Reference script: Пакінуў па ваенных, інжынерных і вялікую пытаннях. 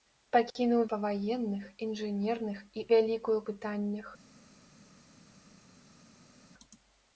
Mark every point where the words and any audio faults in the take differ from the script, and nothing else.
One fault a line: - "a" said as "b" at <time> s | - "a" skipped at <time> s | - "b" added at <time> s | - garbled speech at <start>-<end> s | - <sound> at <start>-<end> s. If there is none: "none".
none